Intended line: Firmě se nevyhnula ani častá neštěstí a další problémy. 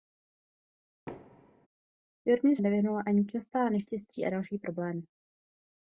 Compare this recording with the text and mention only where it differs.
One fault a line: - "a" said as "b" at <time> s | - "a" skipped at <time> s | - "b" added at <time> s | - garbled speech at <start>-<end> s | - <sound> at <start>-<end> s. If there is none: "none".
- thud at 1.1-1.7 s
- "se" skipped at 2.6 s